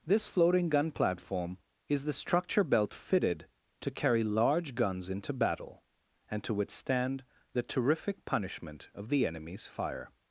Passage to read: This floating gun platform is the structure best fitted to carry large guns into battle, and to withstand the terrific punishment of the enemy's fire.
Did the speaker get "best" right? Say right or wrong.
wrong